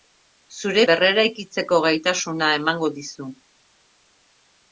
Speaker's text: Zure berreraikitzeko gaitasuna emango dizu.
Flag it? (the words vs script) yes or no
no